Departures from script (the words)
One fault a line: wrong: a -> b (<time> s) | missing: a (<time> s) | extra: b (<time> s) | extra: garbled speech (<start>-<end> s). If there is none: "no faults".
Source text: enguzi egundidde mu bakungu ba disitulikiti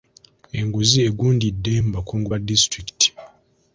no faults